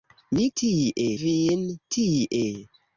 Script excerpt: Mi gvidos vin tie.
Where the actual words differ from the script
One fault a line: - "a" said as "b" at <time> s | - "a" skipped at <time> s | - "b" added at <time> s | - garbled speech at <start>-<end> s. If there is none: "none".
- "gvidos" said as "tie" at 0.6 s